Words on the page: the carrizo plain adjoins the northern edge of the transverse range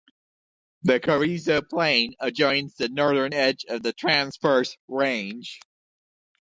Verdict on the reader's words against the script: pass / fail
pass